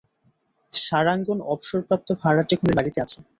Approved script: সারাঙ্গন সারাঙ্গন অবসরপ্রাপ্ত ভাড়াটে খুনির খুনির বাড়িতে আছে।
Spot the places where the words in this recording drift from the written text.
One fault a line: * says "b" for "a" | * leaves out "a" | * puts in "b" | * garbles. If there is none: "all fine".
* leaves out "সারাঙ্গন"
* leaves out "খুনির"